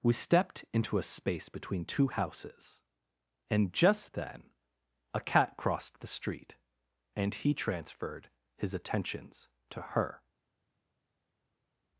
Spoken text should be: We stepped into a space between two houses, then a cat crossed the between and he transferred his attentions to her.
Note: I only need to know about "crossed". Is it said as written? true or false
true